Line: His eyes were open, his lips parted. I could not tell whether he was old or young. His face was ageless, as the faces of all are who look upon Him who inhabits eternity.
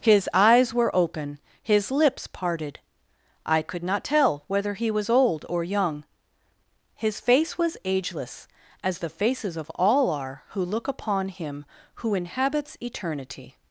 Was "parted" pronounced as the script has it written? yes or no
yes